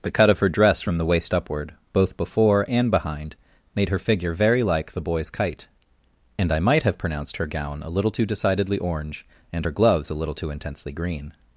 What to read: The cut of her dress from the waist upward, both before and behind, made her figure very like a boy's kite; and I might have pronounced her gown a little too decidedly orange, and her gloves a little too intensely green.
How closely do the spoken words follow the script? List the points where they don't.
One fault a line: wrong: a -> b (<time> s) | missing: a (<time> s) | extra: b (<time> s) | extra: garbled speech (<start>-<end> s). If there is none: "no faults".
wrong: a -> the (4.9 s)